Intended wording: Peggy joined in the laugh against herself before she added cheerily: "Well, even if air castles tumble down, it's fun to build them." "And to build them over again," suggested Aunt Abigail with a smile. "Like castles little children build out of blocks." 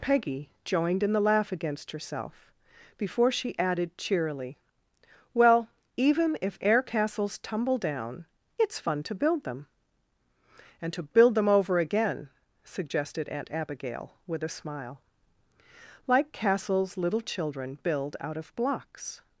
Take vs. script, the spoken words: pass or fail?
pass